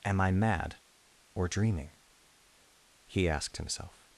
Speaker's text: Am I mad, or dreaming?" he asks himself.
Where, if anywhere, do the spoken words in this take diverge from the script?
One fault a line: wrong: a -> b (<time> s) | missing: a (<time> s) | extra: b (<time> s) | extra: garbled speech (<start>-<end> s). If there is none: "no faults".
wrong: asks -> asked (3.3 s)